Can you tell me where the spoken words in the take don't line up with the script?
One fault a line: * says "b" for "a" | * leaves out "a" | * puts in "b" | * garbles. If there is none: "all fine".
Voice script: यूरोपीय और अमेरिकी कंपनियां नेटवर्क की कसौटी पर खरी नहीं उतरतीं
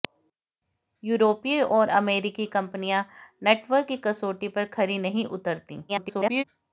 * garbles